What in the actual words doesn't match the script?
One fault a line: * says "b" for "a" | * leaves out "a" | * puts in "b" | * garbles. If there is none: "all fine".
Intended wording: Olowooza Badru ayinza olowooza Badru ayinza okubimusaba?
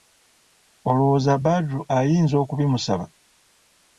* leaves out "olowooza Badru ayinza"